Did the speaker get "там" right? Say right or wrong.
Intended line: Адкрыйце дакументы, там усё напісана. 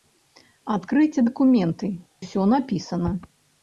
wrong